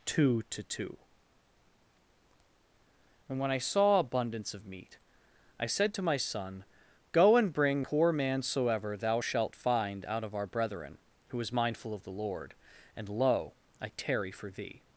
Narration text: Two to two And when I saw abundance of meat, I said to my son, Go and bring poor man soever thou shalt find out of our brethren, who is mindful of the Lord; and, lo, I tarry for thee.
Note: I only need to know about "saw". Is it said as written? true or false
true